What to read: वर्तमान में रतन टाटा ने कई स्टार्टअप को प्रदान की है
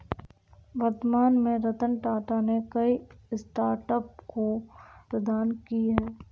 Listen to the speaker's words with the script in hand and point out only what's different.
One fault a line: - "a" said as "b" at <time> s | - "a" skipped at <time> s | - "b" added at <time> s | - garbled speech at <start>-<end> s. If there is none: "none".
none